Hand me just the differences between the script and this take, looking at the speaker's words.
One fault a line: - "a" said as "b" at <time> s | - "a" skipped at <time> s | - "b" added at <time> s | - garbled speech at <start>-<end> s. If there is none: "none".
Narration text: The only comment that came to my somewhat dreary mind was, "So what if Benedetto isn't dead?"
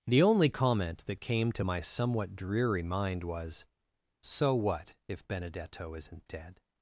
none